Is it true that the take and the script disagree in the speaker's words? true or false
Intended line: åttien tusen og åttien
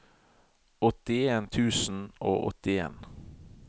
false